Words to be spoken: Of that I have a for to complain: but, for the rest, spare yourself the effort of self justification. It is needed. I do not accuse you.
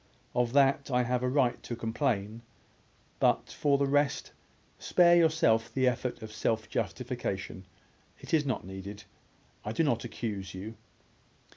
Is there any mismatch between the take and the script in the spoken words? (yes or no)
yes